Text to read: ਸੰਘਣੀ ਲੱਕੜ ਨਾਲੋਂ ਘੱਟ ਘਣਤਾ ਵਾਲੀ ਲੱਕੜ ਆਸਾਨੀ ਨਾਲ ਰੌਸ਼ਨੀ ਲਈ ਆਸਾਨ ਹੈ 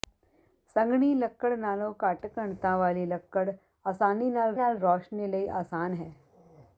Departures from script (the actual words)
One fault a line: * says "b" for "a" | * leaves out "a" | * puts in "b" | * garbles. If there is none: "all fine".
* puts in "ਨਾਲ"